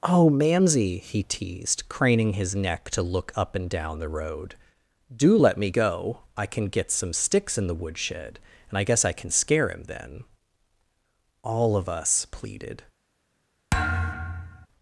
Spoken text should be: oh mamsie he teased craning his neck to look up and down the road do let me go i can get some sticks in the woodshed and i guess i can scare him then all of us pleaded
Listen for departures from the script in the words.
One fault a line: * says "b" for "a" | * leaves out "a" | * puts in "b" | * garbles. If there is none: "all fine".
all fine